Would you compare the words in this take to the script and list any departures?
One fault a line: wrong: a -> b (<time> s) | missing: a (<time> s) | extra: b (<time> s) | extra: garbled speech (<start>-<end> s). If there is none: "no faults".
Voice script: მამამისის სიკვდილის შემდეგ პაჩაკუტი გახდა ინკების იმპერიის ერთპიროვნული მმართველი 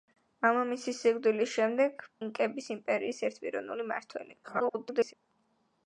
missing: პაჩაკუტი გახდა (2.0 s)
extra: garbled speech (4.4-5.1 s)